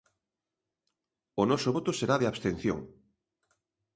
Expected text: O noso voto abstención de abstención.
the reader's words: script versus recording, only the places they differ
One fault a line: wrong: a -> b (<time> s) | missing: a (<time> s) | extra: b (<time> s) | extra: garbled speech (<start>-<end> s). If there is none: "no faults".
wrong: abstención -> será (2.0 s)